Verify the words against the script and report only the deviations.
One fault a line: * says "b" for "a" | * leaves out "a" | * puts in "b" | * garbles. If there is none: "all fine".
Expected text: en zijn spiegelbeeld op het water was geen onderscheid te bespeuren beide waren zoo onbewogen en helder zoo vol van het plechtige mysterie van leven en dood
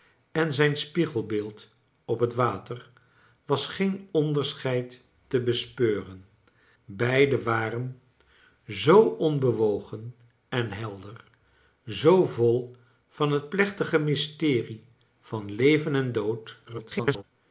* garbles